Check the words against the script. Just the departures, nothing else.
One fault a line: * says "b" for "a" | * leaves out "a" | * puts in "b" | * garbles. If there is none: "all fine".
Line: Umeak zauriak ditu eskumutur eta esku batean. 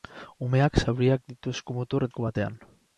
* leaves out "eta"